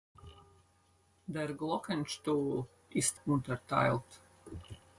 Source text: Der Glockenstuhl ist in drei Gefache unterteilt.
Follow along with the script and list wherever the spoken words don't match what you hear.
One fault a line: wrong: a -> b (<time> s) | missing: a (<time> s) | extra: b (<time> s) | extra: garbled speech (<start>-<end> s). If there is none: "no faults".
missing: in drei Gefache (3.2 s)